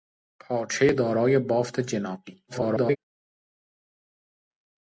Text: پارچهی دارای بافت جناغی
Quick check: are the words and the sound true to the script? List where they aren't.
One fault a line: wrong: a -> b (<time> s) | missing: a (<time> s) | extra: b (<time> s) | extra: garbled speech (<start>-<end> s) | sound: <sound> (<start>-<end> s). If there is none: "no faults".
extra: garbled speech (2.5-3.0 s)